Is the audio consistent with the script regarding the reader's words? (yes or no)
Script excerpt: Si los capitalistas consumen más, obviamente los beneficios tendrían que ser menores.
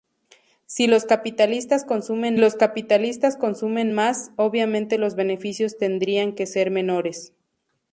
no